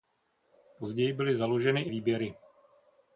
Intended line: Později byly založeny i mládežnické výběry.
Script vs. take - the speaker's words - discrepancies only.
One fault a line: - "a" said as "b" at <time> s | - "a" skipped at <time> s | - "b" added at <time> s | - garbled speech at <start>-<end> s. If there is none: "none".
- "mládežnické" skipped at 1.9 s